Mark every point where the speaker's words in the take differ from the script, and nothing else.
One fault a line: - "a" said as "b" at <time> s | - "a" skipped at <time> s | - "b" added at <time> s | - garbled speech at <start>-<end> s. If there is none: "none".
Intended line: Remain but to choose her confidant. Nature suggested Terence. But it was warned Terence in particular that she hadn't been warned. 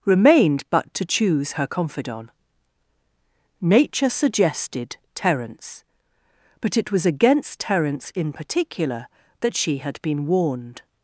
- "Remain" said as "Remained" at 0.1 s
- "warned" said as "against" at 7.0 s
- "hadn't" said as "had" at 9.8 s